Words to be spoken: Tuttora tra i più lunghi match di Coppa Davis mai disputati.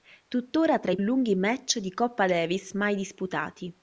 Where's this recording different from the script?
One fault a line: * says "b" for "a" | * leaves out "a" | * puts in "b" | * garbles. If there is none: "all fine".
* leaves out "più"